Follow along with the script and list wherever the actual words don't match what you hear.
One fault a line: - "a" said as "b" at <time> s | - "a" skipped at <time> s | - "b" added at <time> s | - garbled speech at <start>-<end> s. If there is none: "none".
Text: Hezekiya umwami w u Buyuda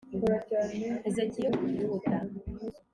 - "umwami" skipped at 1.5 s